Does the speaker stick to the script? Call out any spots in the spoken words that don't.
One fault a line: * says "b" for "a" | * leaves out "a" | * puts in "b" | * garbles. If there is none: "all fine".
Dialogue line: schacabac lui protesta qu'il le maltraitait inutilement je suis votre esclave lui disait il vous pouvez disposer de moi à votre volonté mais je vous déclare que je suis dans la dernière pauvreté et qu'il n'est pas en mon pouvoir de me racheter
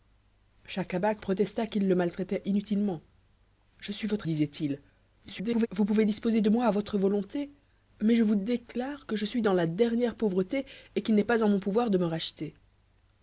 * leaves out "lui"
* leaves out "esclave lui"
* garbles